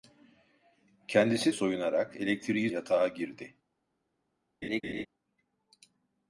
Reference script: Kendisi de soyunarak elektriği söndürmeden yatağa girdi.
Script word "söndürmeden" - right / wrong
wrong